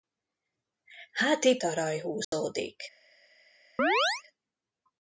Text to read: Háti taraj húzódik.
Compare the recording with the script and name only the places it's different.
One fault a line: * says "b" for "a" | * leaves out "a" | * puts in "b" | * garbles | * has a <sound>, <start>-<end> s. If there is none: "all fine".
* has a dropout, 2.2-2.3 s
* has a chirp, 3.8-4.2 s